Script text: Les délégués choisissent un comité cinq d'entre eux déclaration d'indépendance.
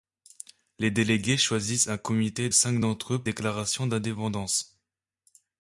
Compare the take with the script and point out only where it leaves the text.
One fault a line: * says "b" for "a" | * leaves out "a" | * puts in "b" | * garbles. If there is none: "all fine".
all fine